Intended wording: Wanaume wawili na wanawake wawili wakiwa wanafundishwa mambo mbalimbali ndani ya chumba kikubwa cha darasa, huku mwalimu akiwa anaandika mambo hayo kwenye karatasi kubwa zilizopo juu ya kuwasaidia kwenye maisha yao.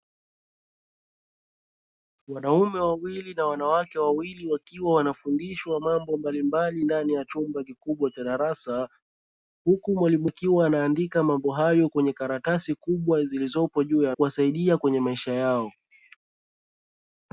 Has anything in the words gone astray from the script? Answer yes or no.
no